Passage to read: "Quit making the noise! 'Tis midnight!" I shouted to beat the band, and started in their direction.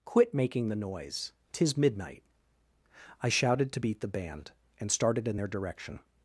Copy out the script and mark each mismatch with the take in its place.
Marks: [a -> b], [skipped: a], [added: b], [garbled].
"Quit making the noise! 'Tis midnight!" I shouted to beat the band, and started in their direction.